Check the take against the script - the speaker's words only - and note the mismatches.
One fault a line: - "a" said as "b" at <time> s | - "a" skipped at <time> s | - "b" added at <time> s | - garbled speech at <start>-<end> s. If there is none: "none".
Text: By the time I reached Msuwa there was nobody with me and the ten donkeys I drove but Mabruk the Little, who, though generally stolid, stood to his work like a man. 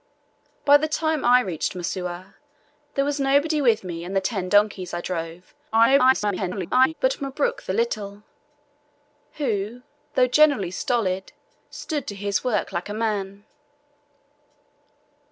- garbled speech at 5.7-6.9 s